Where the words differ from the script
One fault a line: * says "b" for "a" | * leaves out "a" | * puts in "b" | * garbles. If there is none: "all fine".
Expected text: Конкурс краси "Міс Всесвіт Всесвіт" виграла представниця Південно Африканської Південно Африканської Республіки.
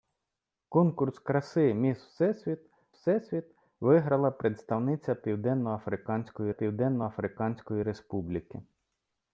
all fine